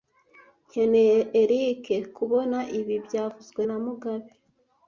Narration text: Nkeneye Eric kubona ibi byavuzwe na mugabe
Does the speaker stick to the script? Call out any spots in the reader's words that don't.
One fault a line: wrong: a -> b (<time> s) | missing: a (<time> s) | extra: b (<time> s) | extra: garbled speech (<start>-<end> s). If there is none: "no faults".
no faults